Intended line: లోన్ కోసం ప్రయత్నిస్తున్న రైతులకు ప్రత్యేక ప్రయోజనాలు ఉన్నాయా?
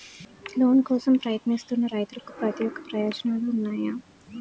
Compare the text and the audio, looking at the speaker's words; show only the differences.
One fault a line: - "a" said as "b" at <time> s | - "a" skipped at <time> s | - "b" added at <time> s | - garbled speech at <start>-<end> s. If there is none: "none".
none